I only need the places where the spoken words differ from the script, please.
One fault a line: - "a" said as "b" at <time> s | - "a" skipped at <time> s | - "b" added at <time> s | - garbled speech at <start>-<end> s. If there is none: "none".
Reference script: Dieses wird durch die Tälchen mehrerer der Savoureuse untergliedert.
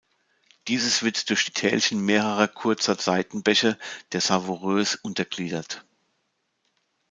- "kurzer Seitenbäche" added at 2.5 s